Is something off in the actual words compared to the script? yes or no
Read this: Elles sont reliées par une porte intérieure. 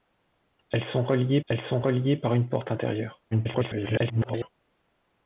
yes